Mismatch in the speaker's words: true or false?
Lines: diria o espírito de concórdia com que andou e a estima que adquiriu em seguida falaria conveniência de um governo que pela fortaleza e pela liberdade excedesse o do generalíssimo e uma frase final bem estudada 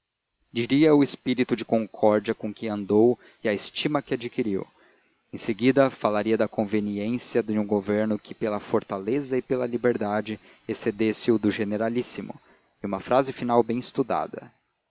true